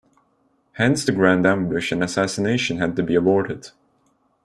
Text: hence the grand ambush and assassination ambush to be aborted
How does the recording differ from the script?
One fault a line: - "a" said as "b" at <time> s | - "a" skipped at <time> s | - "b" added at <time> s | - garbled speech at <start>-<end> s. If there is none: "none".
- "ambush" said as "had" at 2.8 s